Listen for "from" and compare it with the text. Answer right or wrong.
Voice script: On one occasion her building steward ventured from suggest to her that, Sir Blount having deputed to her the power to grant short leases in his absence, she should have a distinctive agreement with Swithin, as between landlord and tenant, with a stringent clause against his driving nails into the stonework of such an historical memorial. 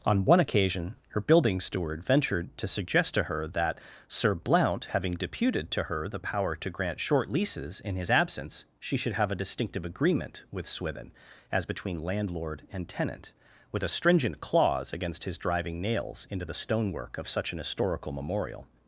wrong